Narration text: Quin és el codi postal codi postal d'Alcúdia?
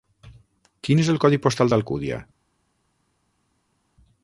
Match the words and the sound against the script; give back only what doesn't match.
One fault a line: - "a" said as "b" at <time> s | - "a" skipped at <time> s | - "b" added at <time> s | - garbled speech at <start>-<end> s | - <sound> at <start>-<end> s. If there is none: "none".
- "codi postal" skipped at 1.7 s